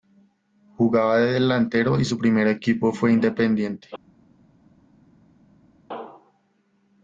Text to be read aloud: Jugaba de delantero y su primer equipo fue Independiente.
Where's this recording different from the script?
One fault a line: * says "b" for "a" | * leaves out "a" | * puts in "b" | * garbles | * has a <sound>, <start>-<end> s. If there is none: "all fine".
all fine